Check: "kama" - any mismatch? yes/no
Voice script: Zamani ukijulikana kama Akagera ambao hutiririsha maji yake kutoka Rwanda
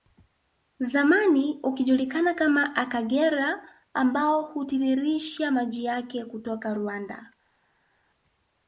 no